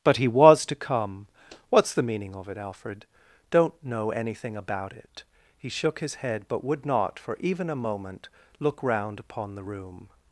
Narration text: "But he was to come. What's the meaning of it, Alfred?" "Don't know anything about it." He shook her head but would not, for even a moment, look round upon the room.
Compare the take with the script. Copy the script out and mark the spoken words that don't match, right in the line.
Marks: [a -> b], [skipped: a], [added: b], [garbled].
"But he was to come. What's the meaning of it, Alfred?" "Don't know anything about it." He shook [her -> his] head but would not, for even a moment, look round upon the room.